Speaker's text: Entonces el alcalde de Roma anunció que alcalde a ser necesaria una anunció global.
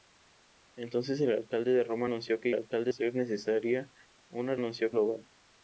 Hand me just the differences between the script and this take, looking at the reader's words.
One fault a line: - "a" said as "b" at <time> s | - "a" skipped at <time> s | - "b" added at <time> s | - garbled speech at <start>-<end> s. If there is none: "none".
none